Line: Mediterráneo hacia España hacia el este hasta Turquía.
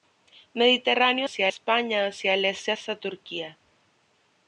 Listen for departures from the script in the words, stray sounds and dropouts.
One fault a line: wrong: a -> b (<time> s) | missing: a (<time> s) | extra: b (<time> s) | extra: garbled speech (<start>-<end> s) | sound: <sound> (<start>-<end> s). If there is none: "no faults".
no faults